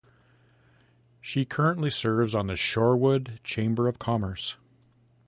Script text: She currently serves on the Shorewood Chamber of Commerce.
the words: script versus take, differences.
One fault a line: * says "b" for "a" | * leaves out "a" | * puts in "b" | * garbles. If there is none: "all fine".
all fine